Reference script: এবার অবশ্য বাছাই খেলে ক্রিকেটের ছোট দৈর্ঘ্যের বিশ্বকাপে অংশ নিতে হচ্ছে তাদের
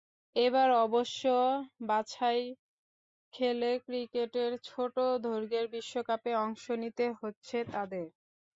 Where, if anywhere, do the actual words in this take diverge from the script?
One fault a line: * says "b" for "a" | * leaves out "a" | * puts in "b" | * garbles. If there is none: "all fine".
all fine